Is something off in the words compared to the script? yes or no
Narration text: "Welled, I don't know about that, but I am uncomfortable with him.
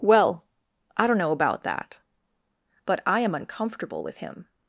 yes